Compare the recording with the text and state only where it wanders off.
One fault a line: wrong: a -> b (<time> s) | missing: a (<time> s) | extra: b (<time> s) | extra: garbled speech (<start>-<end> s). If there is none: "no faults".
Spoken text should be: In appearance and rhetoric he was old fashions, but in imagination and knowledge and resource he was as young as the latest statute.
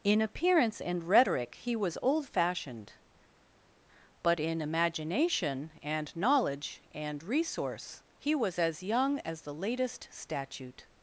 wrong: fashions -> fashioned (2.3 s)